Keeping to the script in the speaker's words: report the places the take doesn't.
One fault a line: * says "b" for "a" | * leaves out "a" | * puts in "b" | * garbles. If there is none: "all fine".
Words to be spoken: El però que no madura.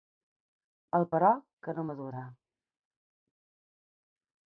all fine